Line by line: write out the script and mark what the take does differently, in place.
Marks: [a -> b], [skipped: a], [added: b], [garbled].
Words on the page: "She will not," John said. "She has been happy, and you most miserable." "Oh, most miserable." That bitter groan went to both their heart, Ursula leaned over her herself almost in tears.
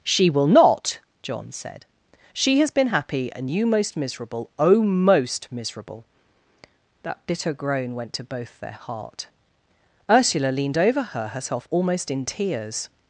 "She will not," John said. "She has been happy, and you most miserable." "Oh, most miserable." That bitter groan went to both their heart, Ursula leaned over her herself almost in tears.